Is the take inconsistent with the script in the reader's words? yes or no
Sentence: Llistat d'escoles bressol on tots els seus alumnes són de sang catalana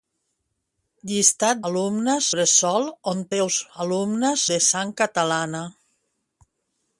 yes